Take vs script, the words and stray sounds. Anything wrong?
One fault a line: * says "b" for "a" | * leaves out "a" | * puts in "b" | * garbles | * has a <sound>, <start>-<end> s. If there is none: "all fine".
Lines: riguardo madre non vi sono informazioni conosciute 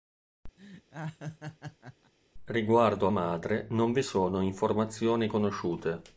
* has a laugh, 0.6-2.1 s